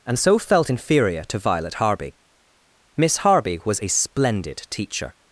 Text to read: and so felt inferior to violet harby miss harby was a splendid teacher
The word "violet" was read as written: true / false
true